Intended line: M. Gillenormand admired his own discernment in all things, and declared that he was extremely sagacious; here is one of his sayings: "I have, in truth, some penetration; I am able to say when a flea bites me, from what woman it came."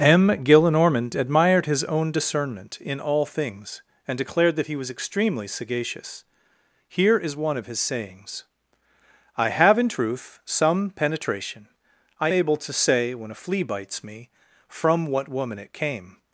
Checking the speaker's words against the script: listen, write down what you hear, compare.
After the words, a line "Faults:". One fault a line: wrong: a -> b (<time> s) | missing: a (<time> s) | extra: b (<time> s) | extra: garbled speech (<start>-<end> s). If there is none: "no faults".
M. Gillenormand admired his own discernment in all things, and declared that he was extremely sagacious; here is one of his sayings: "I have, in truth, some penetration; I able to say when a flea bites me, from what woman it came."
Faults:
missing: am (12.3 s)